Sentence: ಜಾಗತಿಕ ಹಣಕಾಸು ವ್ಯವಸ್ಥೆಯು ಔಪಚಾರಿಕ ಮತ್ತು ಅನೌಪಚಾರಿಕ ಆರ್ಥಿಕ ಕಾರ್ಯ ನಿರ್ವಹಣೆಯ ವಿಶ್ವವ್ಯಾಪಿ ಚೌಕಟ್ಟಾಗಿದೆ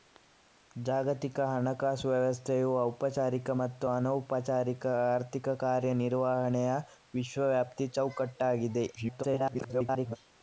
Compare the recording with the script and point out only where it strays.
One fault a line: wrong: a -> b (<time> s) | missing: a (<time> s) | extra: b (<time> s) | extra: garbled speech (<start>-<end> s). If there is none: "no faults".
extra: garbled speech (9.0-10.2 s)